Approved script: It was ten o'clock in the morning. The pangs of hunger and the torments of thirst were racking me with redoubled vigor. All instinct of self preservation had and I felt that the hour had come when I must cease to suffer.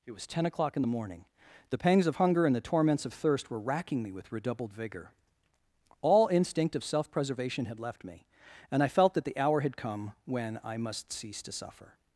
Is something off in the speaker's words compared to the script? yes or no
yes